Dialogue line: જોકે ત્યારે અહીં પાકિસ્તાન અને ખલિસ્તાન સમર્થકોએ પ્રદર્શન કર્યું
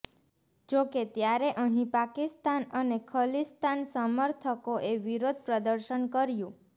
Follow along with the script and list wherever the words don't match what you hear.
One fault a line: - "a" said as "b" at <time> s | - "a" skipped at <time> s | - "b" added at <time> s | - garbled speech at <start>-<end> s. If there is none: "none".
- "વિરોધ" added at 5.0 s